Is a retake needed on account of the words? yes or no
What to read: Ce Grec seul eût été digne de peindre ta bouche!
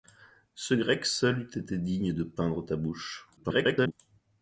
yes